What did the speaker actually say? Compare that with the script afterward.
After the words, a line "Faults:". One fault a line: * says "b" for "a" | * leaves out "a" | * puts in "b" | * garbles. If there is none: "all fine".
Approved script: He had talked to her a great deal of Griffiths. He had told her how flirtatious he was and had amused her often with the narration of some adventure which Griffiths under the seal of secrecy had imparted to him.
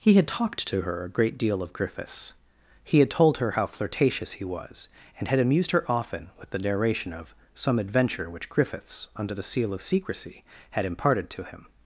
He had talked to her a great deal of Griffiths. He had told her how flirtatious he was and had amused her often with the narration of some adventure which Griffiths under the seal of secrecy had imparted to him.
Faults:
all fine